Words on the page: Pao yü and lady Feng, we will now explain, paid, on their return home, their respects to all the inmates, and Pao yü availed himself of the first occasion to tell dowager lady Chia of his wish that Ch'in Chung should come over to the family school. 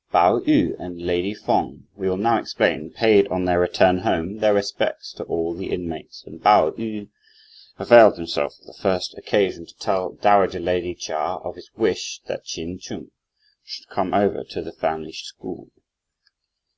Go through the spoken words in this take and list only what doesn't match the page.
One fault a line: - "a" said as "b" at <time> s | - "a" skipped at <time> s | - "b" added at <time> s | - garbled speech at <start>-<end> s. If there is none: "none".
none